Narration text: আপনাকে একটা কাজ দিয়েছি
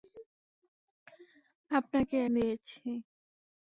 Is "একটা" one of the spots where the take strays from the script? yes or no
yes